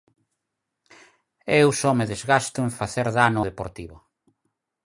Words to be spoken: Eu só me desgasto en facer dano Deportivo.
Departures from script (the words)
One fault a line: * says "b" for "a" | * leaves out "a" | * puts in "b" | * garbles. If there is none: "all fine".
all fine